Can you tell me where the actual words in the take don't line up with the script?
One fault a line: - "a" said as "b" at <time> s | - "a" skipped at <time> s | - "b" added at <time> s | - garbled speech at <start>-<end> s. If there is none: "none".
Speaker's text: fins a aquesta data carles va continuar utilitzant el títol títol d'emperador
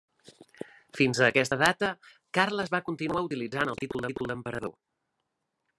none